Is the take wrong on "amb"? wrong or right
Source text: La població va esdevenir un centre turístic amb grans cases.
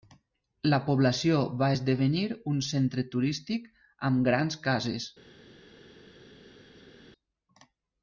right